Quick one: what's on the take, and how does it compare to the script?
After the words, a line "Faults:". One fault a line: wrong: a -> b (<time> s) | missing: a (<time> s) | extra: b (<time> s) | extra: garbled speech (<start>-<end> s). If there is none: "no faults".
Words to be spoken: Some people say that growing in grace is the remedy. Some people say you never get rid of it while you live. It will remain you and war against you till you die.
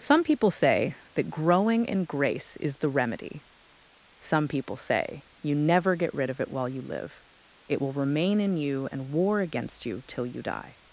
Some people say that growing in grace is the remedy. Some people say you never get rid of it while you live. It will remain in you and war against you till you die.
Faults:
extra: in (8.4 s)